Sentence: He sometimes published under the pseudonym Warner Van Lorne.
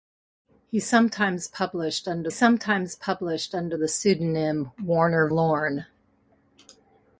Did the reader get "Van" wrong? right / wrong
wrong